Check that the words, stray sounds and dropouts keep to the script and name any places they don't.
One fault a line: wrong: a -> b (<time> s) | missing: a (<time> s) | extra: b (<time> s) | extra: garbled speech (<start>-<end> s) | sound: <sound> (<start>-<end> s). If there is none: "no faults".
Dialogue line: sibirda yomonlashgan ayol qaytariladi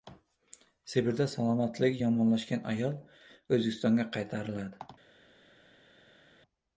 extra: salomatligi (1.3 s)
extra: o‘zbekistonga (3.6 s)